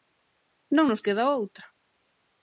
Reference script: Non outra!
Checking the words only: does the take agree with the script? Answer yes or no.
no